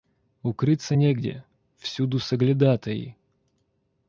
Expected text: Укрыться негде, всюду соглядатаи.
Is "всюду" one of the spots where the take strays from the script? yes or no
no